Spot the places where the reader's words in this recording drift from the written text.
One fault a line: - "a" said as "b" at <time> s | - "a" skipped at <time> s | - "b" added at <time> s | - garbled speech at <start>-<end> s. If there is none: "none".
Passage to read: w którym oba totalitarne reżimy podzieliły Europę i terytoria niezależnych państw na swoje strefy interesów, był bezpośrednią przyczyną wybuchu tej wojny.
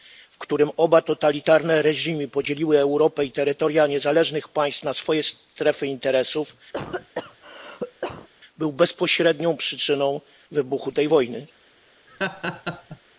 none